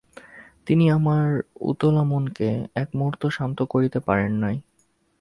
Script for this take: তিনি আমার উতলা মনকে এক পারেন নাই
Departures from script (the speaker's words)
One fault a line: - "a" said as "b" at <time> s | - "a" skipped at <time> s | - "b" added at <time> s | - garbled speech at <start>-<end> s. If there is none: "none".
- "মুহূর্ত শান্ত করিতে" added at 3.0 s